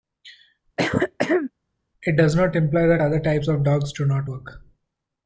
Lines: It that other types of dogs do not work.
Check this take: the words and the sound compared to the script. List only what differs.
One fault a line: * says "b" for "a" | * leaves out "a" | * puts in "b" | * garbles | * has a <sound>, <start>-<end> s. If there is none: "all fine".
* has a throat clearing, 0.8-1.5 s
* puts in "does not imply"